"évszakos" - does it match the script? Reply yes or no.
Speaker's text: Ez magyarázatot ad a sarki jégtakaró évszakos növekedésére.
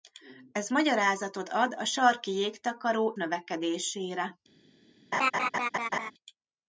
no